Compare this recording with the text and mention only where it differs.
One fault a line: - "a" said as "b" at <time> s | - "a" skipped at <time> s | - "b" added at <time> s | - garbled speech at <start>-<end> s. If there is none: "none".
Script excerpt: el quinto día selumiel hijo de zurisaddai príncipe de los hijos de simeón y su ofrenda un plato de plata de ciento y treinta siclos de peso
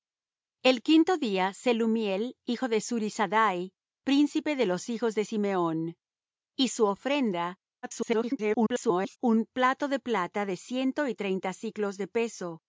- garbled speech at 7.8-9.2 s